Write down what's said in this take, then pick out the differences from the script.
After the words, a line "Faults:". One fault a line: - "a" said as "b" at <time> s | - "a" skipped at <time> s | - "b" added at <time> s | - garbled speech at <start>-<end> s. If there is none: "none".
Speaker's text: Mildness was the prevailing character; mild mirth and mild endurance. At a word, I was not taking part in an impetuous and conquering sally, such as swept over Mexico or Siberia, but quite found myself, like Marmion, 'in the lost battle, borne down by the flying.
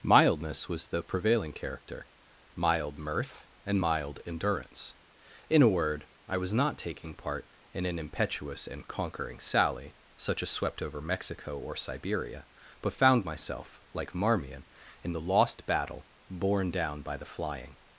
Mildness was the prevailing character; mild mirth and mild endurance. In a word, I was not taking part in an impetuous and conquering sally, such as swept over Mexico or Siberia, but found myself, like Marmion, 'in the lost battle, borne down by the flying.
Faults:
- "At" said as "In" at 5.5 s
- "quite" skipped at 12.9 s